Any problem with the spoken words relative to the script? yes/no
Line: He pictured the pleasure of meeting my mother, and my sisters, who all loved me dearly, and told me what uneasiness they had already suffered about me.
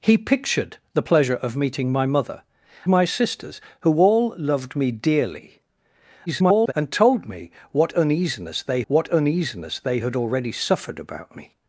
yes